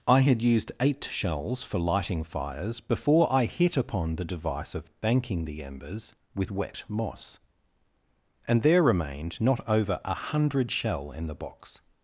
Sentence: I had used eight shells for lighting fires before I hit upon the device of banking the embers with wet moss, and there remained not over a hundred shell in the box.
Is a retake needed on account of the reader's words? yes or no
no